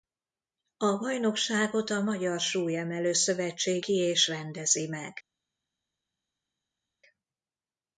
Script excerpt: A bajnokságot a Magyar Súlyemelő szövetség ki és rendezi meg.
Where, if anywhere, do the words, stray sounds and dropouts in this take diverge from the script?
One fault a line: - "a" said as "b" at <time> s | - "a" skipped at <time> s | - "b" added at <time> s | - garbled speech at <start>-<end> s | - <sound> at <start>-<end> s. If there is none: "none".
none